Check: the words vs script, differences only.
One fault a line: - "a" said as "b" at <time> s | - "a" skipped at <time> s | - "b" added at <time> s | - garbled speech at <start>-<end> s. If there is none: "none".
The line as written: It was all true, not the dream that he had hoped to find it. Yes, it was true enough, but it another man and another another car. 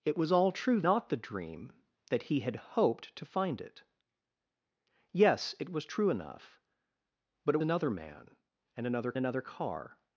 none